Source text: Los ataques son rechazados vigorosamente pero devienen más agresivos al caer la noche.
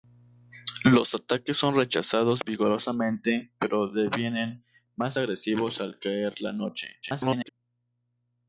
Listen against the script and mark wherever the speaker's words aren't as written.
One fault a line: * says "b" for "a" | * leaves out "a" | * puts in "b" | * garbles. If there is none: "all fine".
* garbles